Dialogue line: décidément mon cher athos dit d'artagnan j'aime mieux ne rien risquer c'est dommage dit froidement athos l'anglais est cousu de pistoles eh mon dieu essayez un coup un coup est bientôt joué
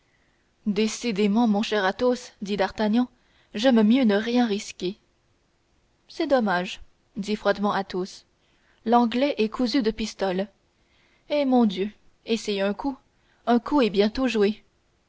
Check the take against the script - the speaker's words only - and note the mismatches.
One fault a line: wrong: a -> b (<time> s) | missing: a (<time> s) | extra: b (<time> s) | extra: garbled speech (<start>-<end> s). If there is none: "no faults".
no faults